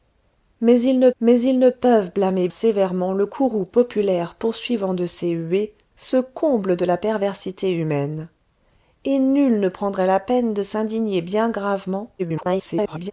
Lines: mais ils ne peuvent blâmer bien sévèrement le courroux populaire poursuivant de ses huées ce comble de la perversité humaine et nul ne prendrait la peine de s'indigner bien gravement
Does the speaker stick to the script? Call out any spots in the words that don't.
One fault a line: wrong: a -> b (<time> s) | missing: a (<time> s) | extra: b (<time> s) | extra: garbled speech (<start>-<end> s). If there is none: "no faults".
extra: mais ils ne (1.2 s)
missing: bien (2.5 s)
extra: garbled speech (12.2-13.1 s)